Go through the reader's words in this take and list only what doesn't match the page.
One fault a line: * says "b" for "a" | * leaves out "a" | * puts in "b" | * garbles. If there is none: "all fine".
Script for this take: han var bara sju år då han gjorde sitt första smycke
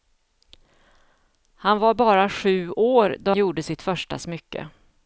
* leaves out "han"